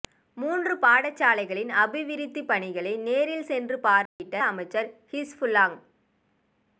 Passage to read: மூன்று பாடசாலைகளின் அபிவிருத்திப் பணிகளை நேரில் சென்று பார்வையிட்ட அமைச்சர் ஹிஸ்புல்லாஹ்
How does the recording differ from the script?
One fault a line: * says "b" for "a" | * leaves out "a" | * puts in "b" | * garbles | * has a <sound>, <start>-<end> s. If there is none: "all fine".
* has a dropout, 4.1-4.2 s